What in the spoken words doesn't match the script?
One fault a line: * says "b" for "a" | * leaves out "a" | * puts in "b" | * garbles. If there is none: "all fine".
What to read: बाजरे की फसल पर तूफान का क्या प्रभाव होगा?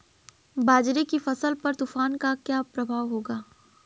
all fine